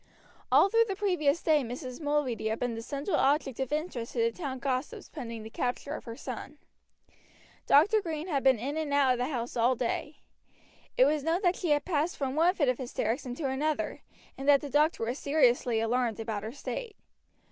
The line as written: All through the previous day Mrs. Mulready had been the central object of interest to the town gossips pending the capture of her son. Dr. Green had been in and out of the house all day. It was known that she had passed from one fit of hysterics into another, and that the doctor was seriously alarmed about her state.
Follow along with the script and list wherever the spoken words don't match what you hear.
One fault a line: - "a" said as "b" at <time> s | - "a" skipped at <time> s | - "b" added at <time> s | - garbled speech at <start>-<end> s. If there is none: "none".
none